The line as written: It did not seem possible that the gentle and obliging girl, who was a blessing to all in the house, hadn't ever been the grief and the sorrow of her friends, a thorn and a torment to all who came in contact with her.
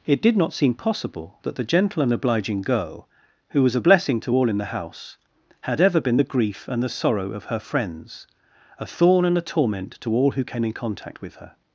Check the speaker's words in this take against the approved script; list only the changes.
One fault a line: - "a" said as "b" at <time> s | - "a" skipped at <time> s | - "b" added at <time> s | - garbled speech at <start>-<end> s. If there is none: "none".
- "hadn't" said as "had" at 5.6 s